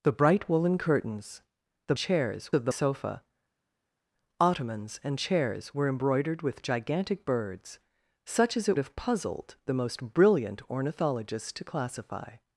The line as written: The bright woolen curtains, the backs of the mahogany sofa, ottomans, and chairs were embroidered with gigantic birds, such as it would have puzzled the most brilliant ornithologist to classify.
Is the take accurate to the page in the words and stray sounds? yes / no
no